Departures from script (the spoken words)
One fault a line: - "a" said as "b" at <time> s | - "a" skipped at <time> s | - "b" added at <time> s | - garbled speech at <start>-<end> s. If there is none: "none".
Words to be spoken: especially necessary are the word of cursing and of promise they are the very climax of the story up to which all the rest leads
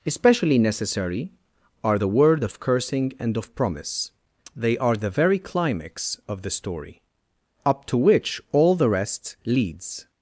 none